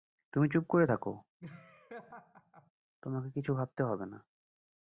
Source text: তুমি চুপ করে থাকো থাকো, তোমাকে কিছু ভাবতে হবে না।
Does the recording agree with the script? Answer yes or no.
no